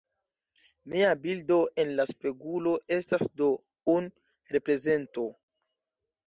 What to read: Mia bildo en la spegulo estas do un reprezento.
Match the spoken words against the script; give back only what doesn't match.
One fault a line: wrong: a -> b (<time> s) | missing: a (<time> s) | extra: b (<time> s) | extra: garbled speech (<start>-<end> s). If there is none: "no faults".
no faults